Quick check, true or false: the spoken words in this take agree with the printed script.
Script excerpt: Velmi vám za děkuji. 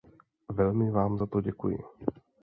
false